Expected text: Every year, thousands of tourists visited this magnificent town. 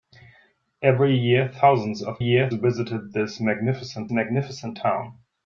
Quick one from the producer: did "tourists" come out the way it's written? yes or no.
no